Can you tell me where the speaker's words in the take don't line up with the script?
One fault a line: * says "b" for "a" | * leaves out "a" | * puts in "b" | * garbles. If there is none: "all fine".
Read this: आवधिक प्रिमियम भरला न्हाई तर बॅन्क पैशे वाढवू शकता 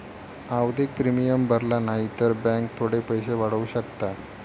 * puts in "थोडे"